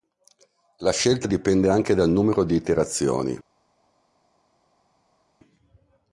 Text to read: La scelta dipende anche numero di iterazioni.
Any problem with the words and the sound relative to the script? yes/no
yes